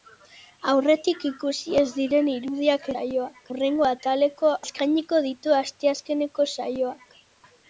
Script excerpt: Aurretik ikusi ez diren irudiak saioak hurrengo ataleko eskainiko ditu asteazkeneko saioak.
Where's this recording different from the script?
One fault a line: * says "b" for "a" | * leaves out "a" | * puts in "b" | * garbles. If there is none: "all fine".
all fine